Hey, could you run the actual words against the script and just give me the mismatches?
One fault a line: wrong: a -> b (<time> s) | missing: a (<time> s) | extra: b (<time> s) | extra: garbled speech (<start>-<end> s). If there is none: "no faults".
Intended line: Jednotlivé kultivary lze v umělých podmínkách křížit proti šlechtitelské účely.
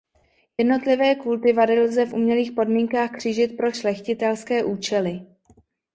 wrong: proti -> pro (3.6 s)